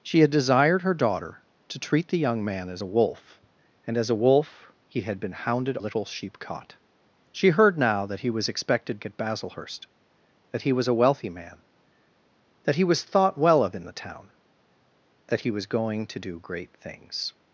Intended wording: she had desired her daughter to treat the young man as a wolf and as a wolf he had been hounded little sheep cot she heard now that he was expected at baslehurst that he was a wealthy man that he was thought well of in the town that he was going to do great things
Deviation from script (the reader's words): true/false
false